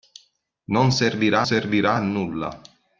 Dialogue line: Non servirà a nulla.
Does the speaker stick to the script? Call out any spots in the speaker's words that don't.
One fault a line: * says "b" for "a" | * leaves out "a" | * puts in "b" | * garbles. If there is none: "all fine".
* puts in "servirà"